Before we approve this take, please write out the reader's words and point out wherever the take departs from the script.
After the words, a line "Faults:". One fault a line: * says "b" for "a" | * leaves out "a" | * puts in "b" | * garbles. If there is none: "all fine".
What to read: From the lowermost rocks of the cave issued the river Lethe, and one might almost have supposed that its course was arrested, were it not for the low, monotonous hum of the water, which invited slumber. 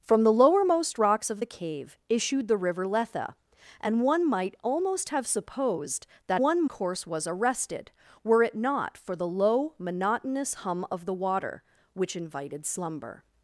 From the lowermost rocks of the cave issued the river Lethe, and one might almost have supposed that one course was arrested, were it not for the low, monotonous hum of the water, which invited slumber.
Faults:
* says "one" for "its"